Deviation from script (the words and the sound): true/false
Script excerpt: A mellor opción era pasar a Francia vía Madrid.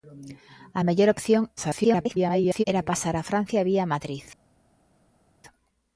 true